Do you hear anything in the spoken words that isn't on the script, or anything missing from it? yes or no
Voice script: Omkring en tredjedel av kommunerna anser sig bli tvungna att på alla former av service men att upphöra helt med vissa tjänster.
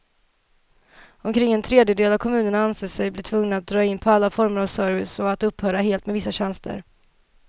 yes